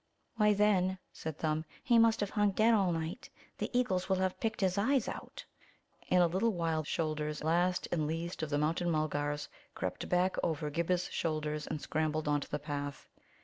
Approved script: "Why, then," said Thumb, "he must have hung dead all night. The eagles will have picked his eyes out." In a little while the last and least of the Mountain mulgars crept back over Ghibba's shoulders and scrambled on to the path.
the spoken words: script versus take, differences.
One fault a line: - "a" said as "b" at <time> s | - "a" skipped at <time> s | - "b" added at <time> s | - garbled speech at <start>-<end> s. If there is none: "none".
- "the" said as "shoulders" at 6.8 s